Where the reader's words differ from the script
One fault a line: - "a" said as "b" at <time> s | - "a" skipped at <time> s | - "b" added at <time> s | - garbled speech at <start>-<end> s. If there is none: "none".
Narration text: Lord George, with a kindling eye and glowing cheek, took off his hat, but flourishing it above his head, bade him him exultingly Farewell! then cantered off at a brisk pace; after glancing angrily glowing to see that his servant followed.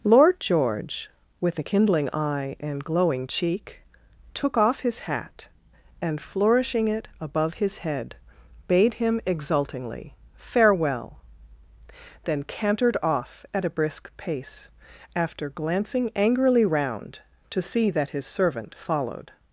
- "but" said as "and" at 6.0 s
- "him" skipped at 9.2 s
- "glowing" said as "round" at 16.6 s